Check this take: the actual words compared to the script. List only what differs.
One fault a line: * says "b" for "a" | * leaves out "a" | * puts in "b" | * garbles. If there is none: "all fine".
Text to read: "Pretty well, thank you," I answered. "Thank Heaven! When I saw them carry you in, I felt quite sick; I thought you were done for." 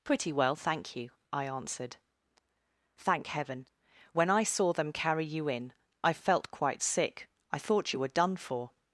all fine